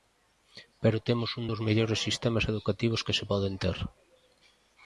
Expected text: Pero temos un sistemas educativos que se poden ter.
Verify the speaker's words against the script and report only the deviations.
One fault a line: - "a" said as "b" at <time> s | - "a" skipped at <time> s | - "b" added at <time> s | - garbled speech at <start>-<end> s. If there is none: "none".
- "dos mellores" added at 1.5 s